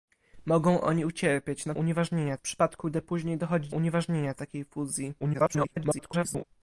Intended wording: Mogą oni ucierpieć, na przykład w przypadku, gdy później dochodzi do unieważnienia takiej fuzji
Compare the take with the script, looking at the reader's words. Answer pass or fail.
fail